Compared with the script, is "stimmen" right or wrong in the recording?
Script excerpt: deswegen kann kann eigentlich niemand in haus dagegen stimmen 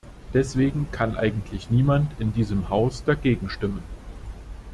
right